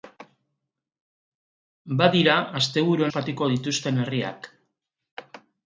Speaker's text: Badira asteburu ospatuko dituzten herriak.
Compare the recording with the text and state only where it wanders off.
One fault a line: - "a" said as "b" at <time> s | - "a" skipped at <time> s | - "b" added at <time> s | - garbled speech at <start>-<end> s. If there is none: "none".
none